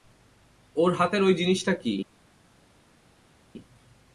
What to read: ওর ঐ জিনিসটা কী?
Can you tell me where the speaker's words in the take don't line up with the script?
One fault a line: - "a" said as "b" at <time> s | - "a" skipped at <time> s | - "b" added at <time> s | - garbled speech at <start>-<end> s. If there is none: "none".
- "হাতের" added at 0.9 s